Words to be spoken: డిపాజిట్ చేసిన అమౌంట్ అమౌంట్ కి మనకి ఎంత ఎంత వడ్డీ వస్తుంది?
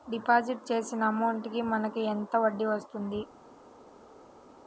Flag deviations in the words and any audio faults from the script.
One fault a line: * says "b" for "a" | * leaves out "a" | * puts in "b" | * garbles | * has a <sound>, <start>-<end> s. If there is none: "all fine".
* leaves out "అమౌంట్"
* leaves out "ఎంత"